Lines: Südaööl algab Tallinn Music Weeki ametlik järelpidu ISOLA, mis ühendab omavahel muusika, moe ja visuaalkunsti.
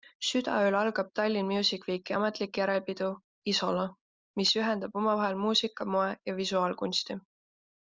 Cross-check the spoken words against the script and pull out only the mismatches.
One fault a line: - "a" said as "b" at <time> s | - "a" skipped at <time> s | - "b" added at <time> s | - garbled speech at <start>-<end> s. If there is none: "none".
none